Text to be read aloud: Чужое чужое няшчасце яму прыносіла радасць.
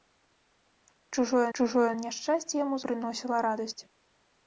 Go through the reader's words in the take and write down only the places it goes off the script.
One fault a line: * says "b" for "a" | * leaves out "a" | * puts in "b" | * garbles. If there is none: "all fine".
all fine